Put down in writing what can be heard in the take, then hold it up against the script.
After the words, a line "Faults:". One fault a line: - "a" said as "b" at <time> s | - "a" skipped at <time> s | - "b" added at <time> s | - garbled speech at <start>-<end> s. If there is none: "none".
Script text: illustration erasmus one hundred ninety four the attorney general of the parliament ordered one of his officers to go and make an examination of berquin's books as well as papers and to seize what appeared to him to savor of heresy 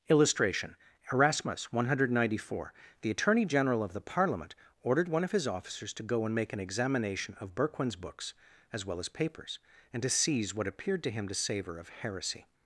illustration erasmus one hundred ninety four the attorney general of the parliament ordered one of his officers to go and make an examination of berquin's books as well as papers and to seize what appeared to him to savor of heresy
Faults:
none